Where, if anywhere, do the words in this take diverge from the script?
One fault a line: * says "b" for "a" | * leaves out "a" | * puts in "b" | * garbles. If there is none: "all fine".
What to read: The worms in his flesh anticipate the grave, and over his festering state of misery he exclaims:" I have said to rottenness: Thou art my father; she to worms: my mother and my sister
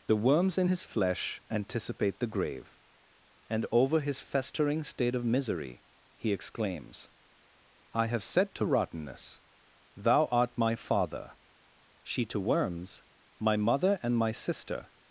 all fine